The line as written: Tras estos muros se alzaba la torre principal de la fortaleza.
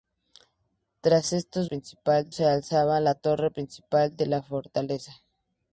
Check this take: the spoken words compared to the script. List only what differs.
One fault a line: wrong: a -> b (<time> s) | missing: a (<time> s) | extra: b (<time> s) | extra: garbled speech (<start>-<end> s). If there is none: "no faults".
wrong: muros -> principal (1.6 s)